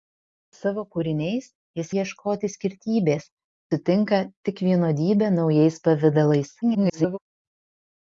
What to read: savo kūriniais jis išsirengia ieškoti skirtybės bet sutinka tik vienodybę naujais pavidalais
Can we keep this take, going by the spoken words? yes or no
no